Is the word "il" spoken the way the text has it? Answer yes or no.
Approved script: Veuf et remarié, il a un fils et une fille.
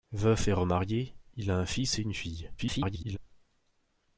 yes